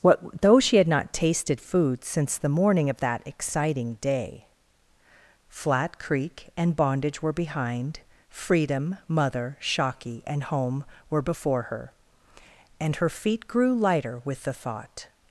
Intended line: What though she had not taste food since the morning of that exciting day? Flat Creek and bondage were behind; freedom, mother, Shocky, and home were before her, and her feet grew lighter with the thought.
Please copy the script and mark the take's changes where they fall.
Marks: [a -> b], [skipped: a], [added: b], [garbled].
What though she had not [taste -> tasted] food since the morning of that exciting day? Flat Creek and bondage were behind; freedom, mother, Shocky, and home were before her, and her feet grew lighter with the thought.